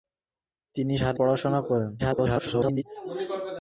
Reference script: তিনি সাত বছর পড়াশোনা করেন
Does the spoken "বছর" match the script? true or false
false